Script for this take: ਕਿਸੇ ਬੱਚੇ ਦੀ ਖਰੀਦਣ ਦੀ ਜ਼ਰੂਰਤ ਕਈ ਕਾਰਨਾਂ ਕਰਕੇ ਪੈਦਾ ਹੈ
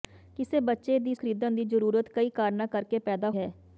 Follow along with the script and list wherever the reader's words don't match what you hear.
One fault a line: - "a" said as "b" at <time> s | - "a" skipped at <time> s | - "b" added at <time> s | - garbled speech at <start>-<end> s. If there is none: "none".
none